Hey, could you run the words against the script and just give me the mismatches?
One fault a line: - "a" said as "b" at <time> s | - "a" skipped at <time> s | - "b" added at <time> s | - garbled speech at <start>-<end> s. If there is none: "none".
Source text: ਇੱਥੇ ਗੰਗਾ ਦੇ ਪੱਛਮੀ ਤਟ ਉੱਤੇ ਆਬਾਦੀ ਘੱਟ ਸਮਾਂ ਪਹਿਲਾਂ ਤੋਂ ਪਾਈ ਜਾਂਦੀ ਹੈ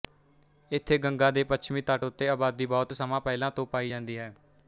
- "ਘੱਟ" said as "ਬਹੁਤ" at 2.7 s